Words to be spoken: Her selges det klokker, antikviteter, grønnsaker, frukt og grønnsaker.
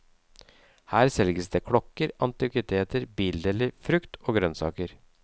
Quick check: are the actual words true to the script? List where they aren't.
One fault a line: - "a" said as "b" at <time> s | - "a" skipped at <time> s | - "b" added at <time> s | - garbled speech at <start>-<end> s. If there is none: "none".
- "grønnsaker" said as "bildeler" at 3.2 s